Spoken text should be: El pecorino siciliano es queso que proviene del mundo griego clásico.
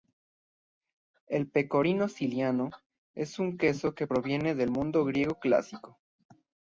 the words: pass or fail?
fail